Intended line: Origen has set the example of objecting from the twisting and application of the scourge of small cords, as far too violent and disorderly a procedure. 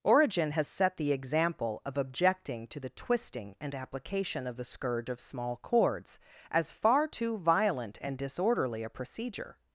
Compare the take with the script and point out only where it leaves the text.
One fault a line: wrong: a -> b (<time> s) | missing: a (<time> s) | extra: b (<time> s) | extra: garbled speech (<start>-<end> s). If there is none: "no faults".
wrong: from -> to (2.7 s)